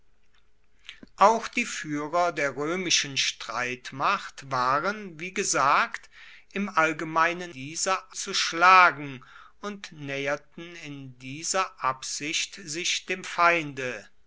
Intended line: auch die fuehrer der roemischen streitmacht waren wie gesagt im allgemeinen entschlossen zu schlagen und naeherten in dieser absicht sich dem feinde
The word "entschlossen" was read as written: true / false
false